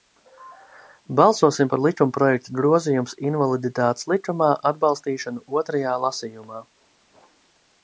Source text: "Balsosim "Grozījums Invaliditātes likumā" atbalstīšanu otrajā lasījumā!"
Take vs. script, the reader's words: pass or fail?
fail